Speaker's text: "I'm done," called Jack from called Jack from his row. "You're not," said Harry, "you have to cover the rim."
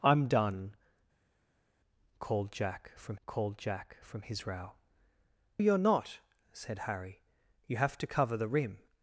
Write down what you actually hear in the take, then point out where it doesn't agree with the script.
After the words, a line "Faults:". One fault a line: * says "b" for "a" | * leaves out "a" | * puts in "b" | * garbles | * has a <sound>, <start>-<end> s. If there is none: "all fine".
"I'm done," called Jack from called Jack from his row. "You're not," said Harry, "you have to cover the rim."
Faults:
all fine